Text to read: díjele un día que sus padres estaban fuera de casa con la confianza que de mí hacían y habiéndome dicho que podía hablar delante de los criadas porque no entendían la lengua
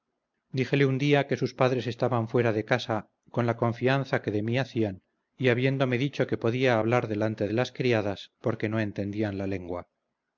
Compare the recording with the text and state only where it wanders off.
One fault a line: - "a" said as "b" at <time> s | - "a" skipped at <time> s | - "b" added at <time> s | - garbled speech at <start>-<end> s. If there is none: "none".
- "los" said as "las" at 7.5 s